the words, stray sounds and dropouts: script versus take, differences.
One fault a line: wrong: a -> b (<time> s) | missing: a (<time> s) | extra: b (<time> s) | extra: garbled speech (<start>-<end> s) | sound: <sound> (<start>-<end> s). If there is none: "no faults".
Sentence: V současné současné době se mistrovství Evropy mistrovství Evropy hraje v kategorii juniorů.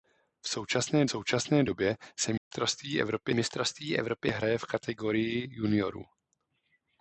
sound: dropout (2.4-2.5 s)